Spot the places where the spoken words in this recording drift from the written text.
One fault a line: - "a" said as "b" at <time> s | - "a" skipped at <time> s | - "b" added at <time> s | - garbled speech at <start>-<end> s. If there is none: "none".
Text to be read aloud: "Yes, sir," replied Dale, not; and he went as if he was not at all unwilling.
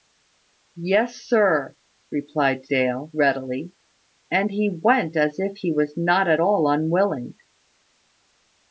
- "not" said as "readily" at 3.1 s